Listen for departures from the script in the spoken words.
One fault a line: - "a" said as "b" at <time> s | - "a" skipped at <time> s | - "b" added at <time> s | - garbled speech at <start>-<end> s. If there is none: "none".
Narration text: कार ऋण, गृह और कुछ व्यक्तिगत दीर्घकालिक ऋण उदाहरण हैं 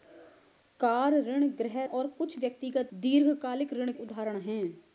none